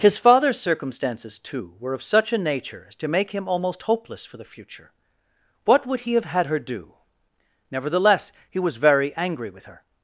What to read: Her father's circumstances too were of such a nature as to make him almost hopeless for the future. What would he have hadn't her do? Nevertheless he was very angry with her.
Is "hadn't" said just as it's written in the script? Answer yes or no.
no